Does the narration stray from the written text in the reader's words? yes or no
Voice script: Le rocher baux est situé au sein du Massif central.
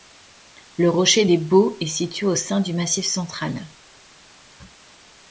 yes